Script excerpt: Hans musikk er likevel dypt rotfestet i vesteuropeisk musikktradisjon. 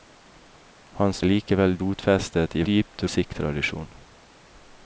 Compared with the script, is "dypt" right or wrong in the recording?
wrong